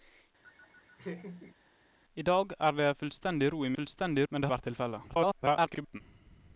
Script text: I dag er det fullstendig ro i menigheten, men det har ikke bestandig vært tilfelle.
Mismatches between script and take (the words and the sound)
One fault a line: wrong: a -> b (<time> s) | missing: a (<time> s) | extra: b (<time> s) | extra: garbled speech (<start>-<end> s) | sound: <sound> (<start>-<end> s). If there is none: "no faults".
sound: laugh (0.4-1.6 s)
wrong: menigheten -> fullstendig (3.8 s)
missing: har ikke bestandig (4.5 s)
extra: garbled speech (5.1-6.0 s)